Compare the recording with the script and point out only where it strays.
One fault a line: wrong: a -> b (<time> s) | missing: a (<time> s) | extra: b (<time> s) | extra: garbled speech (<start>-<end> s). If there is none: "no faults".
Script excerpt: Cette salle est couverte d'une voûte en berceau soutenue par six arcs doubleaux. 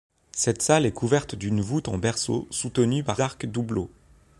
missing: six (3.2 s)